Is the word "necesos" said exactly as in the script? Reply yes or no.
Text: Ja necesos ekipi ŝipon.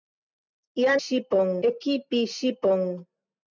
no